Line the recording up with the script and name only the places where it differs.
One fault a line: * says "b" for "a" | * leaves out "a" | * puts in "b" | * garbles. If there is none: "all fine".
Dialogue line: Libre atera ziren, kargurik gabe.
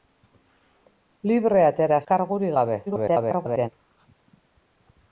* leaves out "ziren"
* garbles